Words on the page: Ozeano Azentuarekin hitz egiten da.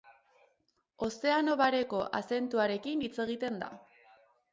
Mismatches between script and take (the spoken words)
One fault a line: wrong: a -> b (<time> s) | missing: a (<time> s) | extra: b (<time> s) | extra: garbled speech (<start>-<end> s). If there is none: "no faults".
extra: Bareko (1.6 s)